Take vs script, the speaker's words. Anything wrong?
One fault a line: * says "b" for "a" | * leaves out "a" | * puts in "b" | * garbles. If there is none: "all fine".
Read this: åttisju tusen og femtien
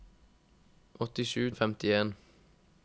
* leaves out "tusen"